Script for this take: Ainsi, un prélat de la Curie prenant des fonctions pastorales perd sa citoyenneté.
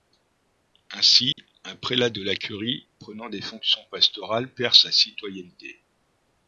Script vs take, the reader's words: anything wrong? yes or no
no